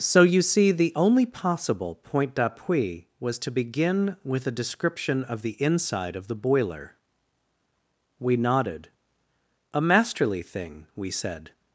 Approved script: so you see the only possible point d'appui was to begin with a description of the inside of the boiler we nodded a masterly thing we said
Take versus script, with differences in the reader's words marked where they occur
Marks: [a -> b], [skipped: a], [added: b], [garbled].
so you see the only possible point d'appui was to begin with a description of the inside of the boiler we nodded a masterly thing we said